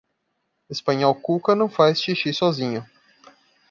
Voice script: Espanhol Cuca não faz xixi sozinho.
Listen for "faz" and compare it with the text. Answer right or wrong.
right